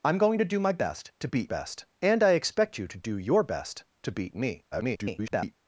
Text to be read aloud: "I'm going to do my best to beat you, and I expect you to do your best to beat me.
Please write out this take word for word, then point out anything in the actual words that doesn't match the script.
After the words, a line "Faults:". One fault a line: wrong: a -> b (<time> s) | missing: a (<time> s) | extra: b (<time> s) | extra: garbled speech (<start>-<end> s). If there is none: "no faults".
"I'm going to do my best to beat best, and I expect you to do your best to beat me. [garbled]
Faults:
wrong: you -> best (1.5 s)
extra: garbled speech (4.7-5.5 s)